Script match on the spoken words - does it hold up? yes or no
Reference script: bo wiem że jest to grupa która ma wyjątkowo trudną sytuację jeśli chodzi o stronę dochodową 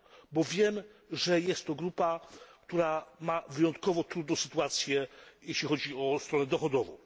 yes